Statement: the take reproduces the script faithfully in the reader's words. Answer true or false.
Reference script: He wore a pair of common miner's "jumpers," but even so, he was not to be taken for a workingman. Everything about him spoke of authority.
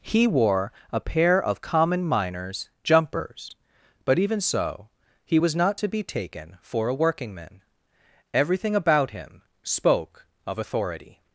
true